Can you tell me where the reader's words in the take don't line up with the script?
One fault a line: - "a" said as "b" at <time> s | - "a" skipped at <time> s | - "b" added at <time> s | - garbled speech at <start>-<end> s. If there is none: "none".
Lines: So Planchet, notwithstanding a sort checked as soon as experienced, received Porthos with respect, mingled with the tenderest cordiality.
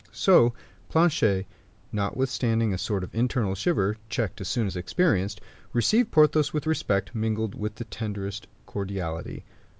- "of internal shiver" added at 3.0 s